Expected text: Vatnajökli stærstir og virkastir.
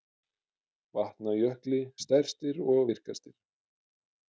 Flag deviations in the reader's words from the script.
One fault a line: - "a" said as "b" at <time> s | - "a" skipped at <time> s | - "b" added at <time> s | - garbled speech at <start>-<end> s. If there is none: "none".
none